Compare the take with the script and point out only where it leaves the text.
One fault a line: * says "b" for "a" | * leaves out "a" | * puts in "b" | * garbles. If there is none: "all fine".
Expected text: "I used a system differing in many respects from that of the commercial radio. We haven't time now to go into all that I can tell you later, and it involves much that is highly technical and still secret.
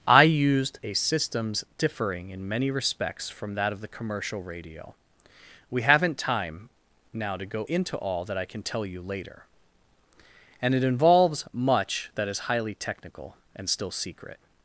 * says "systems" for "system"